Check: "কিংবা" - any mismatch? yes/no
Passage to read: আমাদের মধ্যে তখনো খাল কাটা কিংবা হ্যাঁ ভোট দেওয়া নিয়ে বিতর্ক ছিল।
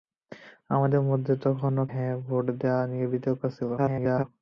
yes